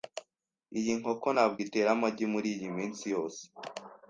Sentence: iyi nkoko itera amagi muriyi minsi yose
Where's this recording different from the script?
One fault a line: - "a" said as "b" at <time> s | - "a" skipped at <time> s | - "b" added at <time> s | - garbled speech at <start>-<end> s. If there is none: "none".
- "ntabwo" added at 1.3 s